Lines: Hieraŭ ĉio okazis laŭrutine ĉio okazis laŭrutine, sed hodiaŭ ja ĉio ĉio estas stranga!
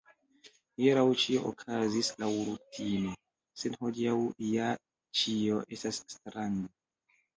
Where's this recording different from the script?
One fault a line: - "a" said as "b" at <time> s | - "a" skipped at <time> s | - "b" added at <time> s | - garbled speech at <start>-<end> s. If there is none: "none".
- "ĉio okazis laŭrutine" skipped at 3.1 s
- "ĉio" skipped at 5.6 s